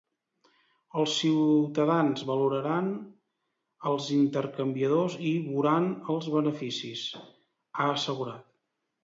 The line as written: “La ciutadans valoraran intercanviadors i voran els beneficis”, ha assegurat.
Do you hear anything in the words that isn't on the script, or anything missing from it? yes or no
yes